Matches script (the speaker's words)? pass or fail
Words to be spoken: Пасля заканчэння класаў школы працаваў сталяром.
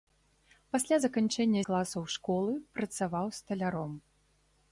pass